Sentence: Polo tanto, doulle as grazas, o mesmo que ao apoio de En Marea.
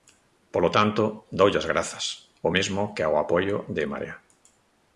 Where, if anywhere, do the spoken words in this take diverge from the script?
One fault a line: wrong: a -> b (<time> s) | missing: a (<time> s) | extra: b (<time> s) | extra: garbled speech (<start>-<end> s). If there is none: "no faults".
no faults